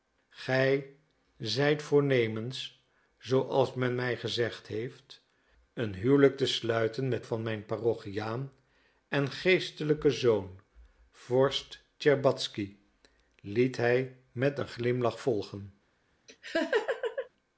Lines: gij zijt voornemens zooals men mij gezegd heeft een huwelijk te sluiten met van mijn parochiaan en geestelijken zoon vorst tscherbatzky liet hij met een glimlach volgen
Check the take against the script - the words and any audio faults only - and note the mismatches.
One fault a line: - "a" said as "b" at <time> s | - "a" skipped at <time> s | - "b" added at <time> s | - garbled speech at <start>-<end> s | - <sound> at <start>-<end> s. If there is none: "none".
- laugh at 16.3-17.3 s